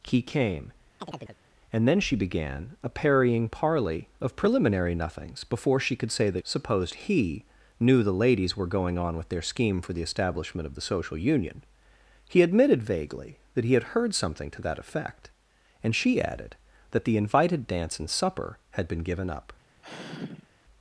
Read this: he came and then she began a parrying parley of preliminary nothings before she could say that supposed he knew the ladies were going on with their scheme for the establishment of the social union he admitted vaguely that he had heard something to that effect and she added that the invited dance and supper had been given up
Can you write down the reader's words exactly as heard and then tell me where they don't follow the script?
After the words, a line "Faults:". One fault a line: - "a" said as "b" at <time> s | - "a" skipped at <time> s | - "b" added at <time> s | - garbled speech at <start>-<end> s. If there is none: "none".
he came and then she began a parrying parley of preliminary nothings before she could say that supposed he knew the ladies were going on with their scheme for the establishment of the social union he admitted vaguely that he had heard something to that effect and she added that the invited dance and supper had been given up
Faults:
none